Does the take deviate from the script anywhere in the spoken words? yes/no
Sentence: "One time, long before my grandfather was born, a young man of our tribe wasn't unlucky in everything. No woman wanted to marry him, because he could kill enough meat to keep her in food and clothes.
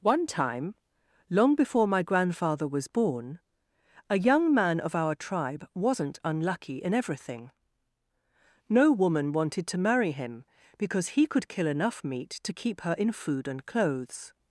no